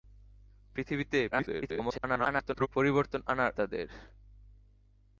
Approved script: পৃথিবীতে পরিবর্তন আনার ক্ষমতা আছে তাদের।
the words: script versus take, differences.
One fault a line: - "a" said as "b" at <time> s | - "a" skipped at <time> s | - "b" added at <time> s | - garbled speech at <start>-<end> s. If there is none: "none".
- garbled speech at 1.3-2.7 s
- "ক্ষমতা আছে" skipped at 3.5 s